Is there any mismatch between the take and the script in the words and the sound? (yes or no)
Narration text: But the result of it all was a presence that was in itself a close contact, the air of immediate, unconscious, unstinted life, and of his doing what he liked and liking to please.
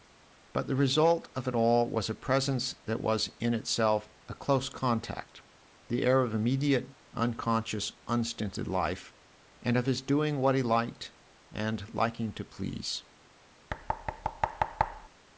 yes